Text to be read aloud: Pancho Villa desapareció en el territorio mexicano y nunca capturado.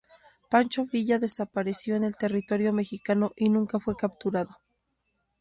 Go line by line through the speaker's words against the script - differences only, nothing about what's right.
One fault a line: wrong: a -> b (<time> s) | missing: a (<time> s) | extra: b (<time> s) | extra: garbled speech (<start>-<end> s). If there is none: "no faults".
extra: fue (3.8 s)